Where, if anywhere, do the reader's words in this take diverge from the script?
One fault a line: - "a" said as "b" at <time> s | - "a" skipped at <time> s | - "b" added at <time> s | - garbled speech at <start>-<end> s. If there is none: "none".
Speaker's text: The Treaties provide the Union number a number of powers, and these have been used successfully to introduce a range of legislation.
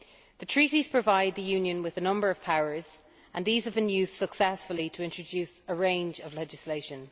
- "number" said as "with" at 1.8 s